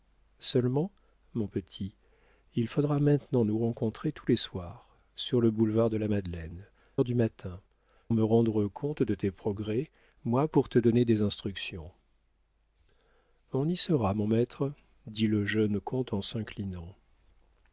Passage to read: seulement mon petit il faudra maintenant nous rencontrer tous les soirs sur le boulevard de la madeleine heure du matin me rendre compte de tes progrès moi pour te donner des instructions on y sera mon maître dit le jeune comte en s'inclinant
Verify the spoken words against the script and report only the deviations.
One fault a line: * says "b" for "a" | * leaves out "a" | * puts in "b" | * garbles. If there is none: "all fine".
all fine